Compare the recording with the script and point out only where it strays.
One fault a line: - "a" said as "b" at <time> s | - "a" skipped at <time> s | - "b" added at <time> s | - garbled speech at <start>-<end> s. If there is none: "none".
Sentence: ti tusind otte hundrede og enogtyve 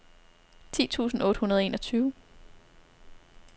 none